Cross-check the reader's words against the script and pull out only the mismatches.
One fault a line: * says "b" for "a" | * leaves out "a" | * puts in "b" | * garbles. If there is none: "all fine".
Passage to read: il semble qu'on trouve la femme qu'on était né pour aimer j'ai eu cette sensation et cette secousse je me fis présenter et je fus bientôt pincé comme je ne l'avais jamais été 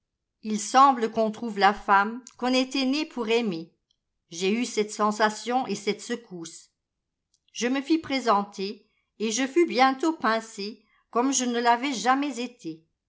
all fine